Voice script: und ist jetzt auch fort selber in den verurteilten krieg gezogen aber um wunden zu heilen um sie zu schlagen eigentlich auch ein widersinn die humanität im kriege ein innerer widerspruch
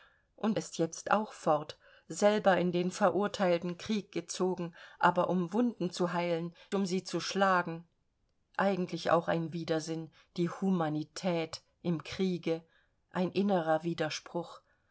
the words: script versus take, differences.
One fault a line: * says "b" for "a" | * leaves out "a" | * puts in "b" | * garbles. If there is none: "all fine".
all fine